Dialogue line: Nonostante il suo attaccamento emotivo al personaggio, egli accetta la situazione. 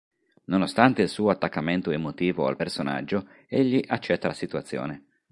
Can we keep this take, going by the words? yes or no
yes